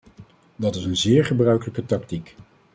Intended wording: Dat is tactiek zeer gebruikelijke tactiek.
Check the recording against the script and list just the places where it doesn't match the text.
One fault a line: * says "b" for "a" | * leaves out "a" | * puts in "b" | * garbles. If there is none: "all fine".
* says "een" for "tactiek"